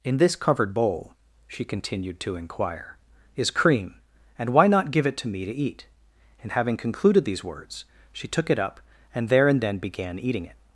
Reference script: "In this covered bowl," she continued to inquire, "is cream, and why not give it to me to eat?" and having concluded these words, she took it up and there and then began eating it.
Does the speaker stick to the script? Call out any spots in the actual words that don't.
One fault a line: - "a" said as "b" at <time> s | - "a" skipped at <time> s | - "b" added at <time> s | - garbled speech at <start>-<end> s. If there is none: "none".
none